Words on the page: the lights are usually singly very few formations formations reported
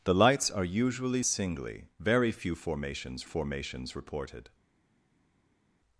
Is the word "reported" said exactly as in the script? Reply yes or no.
yes